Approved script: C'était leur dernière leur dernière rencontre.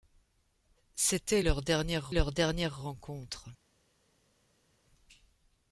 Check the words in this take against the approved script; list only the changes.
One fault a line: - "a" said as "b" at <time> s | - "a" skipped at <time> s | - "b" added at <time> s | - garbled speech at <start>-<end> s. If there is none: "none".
none